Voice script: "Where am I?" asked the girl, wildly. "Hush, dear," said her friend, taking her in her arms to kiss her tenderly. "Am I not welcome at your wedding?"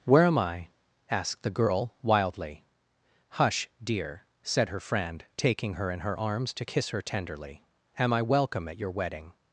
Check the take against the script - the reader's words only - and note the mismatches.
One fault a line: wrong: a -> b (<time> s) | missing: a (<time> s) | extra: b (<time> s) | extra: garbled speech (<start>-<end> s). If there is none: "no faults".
missing: not (8.2 s)